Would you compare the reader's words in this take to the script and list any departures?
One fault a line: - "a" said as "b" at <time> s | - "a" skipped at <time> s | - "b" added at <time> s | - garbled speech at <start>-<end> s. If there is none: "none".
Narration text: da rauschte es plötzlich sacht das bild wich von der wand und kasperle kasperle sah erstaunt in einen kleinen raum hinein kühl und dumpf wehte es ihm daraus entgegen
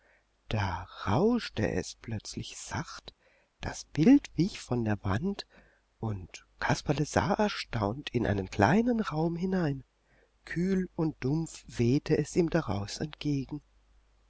- "kasperle" skipped at 7.0 s